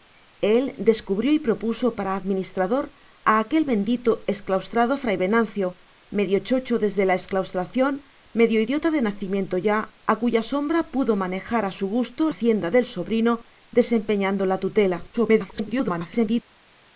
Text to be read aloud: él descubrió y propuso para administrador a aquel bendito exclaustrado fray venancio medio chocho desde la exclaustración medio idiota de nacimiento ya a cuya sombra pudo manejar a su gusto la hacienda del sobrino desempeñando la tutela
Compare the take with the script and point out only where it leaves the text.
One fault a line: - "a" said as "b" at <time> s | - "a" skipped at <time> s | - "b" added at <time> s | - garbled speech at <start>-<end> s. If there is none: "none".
- "la" skipped at 12.3 s
- garbled speech at 15.1-16.4 s